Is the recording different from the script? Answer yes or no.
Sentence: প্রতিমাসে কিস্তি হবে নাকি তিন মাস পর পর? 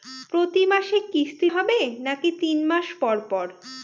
no